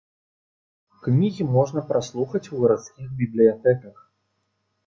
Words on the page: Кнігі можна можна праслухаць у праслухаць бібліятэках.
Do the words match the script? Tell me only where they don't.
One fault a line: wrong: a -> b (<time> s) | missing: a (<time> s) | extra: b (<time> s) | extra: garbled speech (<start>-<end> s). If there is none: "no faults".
missing: можна (1.8 s)
wrong: праслухаць -> гарадскіх (2.6 s)